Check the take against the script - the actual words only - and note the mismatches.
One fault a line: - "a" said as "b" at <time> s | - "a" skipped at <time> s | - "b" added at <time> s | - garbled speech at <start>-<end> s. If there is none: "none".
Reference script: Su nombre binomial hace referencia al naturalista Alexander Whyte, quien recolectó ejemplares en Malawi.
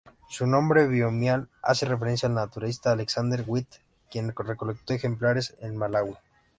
none